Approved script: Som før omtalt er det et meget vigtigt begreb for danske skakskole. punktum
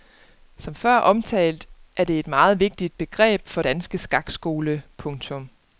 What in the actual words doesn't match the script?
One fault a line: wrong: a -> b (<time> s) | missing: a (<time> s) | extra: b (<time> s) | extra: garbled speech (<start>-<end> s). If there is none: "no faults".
no faults